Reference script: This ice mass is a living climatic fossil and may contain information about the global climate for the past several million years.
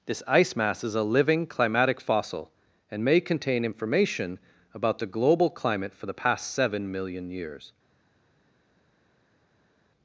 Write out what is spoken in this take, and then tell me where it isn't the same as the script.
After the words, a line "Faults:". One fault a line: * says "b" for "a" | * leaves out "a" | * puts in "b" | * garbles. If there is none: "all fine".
This ice mass is a living climatic fossil and may contain information about the global climate for the past seven million years.
Faults:
* says "seven" for "several"